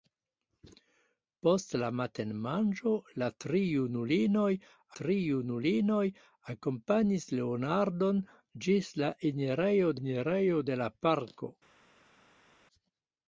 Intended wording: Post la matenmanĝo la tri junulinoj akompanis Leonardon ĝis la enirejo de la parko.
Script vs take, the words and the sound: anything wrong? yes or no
yes